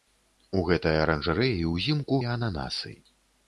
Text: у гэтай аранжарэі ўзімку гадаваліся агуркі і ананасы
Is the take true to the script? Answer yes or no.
no